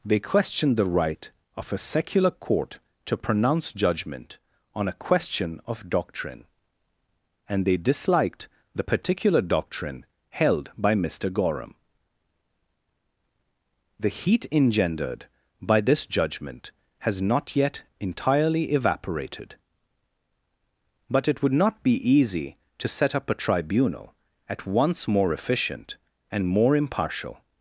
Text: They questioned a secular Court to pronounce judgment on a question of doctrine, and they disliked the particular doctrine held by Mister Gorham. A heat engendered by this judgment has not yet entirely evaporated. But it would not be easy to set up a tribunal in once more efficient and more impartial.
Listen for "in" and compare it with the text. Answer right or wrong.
wrong